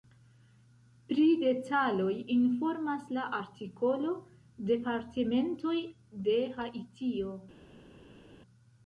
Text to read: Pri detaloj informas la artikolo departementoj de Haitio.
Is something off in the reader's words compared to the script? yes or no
no